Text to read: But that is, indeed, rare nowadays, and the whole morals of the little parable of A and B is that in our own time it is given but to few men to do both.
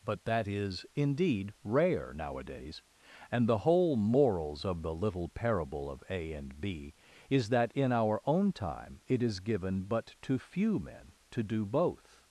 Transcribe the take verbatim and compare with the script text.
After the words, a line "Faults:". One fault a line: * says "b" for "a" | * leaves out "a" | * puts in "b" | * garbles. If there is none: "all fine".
But that is, indeed, rare nowadays, and the whole morals of the little parable of A and B is that in our own time it is given but to few men to do both.
Faults:
all fine